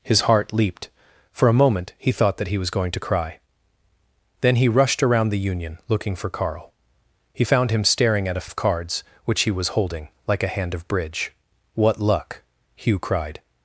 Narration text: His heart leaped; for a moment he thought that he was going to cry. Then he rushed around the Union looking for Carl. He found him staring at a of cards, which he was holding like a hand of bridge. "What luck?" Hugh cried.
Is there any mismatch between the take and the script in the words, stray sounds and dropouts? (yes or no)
no